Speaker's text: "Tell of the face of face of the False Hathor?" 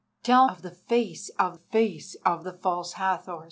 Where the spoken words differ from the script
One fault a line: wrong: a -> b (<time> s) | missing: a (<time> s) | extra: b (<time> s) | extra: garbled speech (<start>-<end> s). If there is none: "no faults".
no faults